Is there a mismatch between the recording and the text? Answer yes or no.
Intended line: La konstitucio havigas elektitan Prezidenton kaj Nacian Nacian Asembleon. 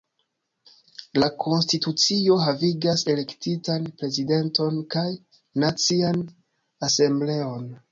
yes